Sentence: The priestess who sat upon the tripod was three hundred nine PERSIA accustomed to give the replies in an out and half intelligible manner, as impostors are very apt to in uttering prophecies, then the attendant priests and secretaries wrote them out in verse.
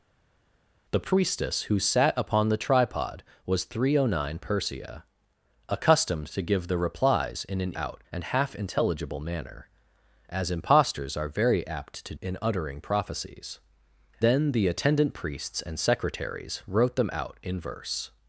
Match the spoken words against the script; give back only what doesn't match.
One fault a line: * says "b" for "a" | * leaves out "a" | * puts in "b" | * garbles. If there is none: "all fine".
all fine